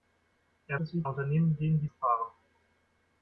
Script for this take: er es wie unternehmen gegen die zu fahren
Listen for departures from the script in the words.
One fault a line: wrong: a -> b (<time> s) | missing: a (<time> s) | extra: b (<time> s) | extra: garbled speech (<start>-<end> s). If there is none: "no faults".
no faults